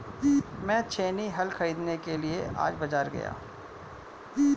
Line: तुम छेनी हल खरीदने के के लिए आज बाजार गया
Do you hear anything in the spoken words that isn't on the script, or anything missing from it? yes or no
yes